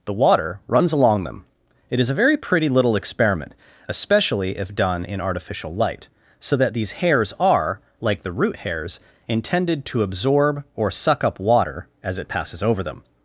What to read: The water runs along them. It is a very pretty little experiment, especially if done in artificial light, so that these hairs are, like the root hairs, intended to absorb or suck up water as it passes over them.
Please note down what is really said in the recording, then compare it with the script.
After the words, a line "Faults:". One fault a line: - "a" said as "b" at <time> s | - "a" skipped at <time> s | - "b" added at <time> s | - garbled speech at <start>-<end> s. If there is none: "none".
The water runs along them. It is a very pretty little experiment, especially if done in artificial light, so that these hairs are, like the root hairs, intended to absorb or suck up water as it passes over them.
Faults:
none